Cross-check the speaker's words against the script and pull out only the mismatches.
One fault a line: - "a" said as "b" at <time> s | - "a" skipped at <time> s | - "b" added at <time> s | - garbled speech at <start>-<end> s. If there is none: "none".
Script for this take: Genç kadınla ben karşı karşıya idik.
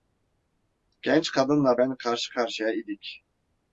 none